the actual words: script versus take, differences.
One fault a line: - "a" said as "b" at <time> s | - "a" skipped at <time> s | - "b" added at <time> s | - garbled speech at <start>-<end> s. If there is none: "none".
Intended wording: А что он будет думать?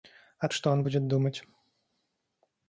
none